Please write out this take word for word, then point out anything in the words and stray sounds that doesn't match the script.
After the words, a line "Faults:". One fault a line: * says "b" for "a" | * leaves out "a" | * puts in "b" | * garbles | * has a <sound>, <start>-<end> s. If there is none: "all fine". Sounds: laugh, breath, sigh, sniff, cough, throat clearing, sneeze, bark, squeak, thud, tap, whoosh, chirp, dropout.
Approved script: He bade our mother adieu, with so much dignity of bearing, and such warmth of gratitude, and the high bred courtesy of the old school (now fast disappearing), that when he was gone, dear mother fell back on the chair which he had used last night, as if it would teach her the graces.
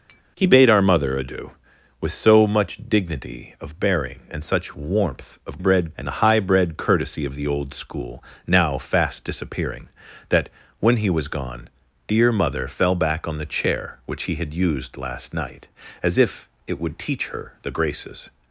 He bade our mother adieu, with so much dignity of bearing, and such warmth of bred, and the high bred courtesy of the old school (now fast disappearing), that when he was gone, dear mother fell back on the chair which he had used last night, as if it would teach her the graces.
Faults:
* has a tap, 0.1-0.2 s
* says "bred" for "gratitude"